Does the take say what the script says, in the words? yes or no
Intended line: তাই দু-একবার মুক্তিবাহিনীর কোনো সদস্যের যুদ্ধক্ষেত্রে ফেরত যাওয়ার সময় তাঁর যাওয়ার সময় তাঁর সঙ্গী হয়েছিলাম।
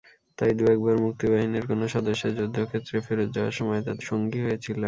no